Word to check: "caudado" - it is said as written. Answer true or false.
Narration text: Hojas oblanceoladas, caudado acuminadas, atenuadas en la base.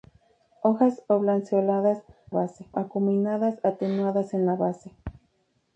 false